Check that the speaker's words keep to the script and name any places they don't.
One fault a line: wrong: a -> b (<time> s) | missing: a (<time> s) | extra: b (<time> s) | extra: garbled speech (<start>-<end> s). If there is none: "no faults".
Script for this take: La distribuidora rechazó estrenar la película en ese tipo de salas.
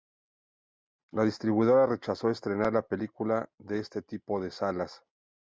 wrong: ese -> este (3.7 s)